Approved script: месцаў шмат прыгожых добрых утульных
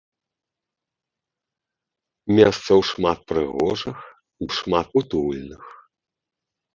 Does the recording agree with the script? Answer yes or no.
no